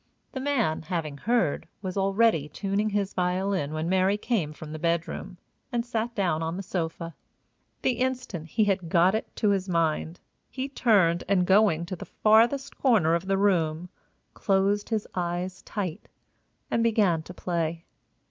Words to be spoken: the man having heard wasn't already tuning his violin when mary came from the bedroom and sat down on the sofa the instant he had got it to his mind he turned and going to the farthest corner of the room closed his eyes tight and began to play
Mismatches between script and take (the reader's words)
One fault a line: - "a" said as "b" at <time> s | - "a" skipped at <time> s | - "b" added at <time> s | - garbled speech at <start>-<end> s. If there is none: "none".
- "wasn't" said as "was" at 1.8 s